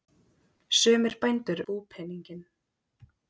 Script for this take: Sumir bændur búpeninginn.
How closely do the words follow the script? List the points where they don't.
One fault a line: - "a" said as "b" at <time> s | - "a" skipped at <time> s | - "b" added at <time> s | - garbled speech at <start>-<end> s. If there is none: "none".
none